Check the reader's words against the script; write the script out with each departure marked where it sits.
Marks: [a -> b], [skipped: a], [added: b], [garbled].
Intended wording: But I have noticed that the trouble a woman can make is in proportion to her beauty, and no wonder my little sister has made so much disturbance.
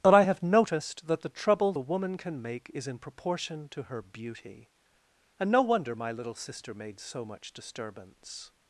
But I have noticed that the trouble [a -> the] woman can make is in proportion to her beauty, and no wonder my little sister [skipped: has] made so much disturbance.